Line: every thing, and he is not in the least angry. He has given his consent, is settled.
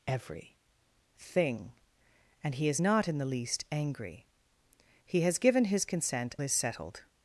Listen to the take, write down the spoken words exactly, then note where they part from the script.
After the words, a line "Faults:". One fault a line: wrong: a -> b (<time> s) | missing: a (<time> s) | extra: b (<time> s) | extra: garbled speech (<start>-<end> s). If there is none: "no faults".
every thing, and he is not in the least angry. He has given his consent, is settled.
Faults:
no faults